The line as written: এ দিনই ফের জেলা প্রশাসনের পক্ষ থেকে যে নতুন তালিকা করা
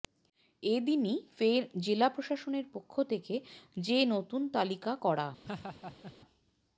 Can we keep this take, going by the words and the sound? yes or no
no